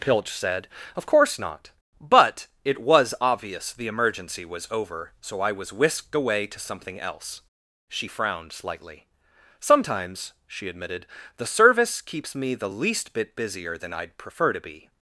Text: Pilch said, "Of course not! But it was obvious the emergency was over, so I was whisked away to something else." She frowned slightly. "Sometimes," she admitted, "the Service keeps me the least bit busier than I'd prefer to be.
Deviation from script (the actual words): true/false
false